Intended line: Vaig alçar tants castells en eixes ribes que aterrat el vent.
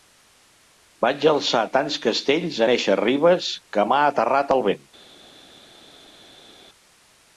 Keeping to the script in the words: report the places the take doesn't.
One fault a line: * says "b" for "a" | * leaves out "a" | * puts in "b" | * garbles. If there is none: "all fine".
* puts in "m'ha"